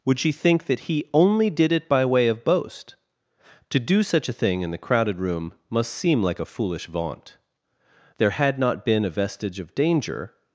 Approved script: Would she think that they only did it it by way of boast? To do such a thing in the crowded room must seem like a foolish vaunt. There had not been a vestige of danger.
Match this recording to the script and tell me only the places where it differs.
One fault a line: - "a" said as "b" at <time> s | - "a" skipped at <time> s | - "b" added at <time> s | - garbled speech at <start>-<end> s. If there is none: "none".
- "they" said as "he" at 0.8 s
- "it" skipped at 1.9 s